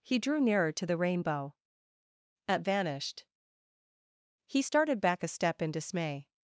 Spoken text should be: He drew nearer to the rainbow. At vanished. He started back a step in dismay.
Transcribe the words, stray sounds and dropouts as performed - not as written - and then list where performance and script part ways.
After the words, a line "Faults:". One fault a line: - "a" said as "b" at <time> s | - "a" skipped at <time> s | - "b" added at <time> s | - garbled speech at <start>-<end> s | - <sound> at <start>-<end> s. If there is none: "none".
He drew nearer to the rainbow. At vanished. He started back a step in dismay.
Faults:
none